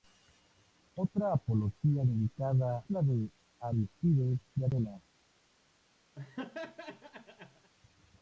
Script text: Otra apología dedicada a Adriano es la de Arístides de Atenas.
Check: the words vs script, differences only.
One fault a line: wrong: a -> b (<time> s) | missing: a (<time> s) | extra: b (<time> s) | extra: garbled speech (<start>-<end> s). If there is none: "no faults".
missing: a Adriano es (2.8 s)